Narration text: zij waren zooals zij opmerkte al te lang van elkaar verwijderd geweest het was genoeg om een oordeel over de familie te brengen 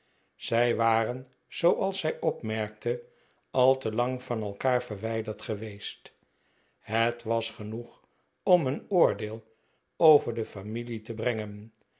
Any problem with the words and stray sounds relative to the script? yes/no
no